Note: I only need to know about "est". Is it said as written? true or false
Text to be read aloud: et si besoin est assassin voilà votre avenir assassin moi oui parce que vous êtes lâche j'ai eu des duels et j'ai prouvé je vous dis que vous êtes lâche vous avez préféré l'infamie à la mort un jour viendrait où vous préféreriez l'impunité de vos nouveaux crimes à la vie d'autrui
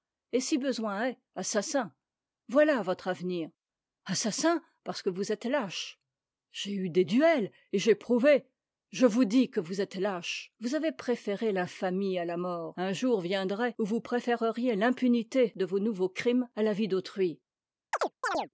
true